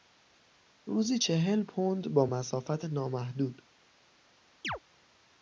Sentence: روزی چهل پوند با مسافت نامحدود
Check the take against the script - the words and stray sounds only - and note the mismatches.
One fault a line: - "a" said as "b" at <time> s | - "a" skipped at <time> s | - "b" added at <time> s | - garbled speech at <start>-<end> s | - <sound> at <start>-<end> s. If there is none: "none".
- chirp at 4.6-4.8 s